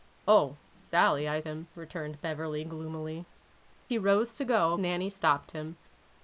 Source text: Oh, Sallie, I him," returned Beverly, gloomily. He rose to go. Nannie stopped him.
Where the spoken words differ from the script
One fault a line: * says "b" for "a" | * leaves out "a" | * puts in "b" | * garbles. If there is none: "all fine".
all fine